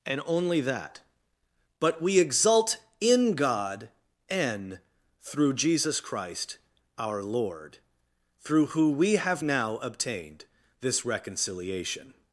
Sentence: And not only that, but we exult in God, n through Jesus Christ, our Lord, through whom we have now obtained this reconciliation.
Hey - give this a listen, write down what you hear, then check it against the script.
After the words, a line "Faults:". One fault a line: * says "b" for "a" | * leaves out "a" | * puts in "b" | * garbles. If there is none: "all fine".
And only that, but we exult in God, n through Jesus Christ, our Lord, through who we have now obtained this reconciliation.
Faults:
* leaves out "not"
* says "who" for "whom"